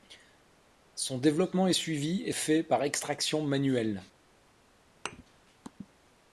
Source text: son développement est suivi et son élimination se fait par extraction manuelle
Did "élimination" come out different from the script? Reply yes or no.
yes